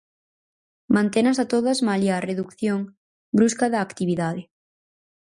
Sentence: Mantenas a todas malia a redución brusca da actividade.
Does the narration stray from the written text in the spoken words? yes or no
no